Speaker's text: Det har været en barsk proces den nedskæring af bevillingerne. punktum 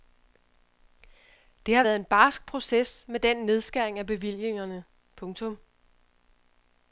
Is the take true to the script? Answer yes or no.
no